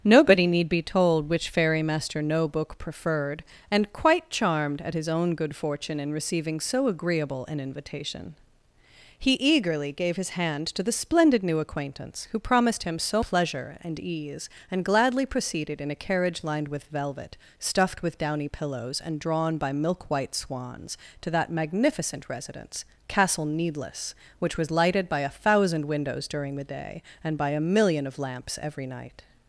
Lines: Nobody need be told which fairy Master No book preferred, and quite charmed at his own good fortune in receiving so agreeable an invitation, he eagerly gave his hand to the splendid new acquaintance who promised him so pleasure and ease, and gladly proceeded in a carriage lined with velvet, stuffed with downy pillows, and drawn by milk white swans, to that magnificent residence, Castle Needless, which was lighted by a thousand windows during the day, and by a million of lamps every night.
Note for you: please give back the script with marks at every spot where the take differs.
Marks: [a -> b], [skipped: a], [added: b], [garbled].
Nobody need be told which fairy Master No book preferred, and quite charmed at his own good fortune in receiving so agreeable an invitation, he eagerly gave his hand to the splendid new acquaintance who promised him so pleasure and ease, and gladly proceeded in a carriage lined with velvet, stuffed with downy pillows, and drawn by milk white swans, to that magnificent residence, Castle Needless, which was lighted by a thousand windows during the day, and by a million of lamps every night.